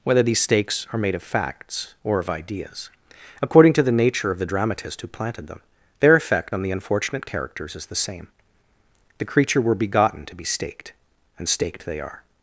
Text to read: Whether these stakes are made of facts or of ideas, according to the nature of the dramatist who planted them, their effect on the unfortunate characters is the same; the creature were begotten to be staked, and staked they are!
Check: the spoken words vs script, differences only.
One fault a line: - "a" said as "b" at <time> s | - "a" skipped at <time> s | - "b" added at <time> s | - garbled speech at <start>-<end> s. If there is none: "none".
none